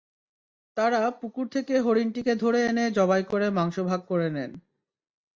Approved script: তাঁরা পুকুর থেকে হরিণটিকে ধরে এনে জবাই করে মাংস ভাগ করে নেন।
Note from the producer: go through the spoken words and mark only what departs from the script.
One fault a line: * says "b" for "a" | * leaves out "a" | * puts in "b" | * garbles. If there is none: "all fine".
all fine